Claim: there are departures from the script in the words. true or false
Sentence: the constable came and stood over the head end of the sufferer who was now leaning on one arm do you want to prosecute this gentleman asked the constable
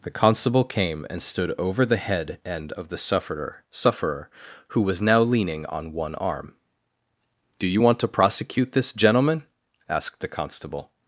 true